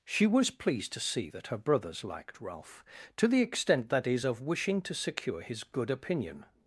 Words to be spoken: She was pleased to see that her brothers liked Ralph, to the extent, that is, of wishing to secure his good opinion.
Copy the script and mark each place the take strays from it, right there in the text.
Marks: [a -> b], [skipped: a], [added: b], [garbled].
She was pleased to see that her brothers liked Ralph, to the extent, that is, of wishing to secure his good opinion.